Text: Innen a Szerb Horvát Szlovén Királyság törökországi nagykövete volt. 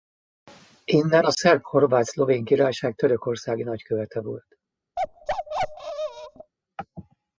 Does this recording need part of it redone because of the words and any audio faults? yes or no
yes